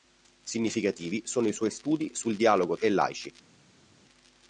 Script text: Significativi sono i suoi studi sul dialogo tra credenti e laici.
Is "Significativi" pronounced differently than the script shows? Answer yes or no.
no